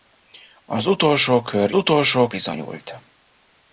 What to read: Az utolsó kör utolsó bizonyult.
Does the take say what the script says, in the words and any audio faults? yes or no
yes